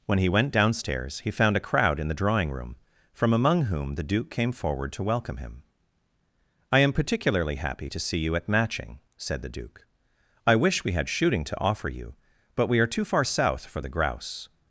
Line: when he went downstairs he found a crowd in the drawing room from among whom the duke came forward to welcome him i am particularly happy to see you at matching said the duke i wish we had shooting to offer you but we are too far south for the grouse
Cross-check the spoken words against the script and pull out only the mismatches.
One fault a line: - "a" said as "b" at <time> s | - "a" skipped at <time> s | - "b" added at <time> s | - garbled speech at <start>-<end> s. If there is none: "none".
none